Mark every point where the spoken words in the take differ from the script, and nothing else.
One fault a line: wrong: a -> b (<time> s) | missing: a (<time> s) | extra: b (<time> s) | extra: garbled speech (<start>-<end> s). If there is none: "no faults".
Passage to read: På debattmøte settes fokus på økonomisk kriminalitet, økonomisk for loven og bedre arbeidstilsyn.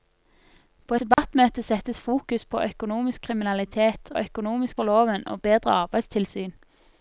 no faults